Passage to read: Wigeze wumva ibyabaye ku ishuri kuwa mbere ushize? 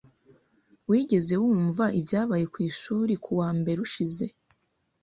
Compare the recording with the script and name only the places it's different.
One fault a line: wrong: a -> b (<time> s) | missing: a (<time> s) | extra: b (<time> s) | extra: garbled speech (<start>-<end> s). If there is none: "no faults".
no faults